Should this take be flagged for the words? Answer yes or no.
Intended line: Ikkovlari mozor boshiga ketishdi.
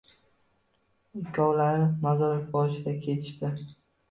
no